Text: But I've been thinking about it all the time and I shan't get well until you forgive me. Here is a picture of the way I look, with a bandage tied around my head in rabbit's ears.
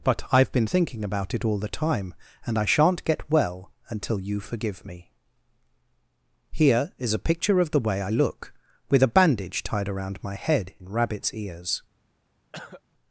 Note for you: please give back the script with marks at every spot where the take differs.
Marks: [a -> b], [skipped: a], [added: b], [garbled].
But I've been thinking about it all the time and I shan't get well until you forgive me. Here is a picture of the way I look, with a bandage tied around my head in rabbit's ears.